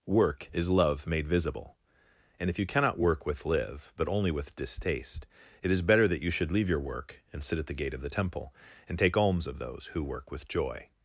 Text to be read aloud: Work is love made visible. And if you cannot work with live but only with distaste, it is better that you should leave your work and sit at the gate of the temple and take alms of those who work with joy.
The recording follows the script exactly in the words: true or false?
true